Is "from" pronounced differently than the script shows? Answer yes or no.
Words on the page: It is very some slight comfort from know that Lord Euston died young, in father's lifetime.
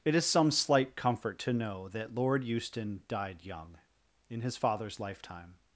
yes